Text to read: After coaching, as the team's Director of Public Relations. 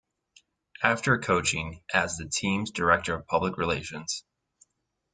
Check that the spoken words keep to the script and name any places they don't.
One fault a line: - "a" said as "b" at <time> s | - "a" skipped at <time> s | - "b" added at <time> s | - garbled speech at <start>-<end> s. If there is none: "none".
none